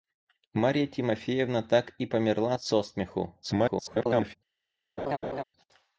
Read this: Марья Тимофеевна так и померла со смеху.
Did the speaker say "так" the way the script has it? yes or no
yes